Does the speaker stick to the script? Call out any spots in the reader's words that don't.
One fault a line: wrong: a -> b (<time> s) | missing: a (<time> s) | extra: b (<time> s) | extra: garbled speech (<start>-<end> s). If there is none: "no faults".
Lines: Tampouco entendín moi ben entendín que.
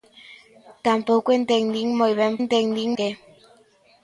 no faults